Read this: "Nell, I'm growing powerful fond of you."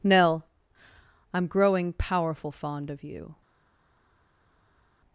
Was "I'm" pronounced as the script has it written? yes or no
yes